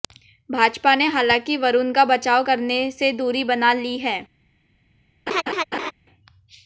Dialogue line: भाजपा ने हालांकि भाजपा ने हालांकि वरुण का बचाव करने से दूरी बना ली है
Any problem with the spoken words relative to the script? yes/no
yes